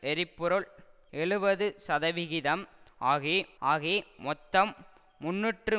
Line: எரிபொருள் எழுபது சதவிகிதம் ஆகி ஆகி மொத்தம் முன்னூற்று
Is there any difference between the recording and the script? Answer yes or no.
no